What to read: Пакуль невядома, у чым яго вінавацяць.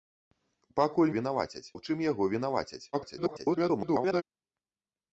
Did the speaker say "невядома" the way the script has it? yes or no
no